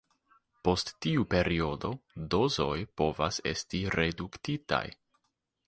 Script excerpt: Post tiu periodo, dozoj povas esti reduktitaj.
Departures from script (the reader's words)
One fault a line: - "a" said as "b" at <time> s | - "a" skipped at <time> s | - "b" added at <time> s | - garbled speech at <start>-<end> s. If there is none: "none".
none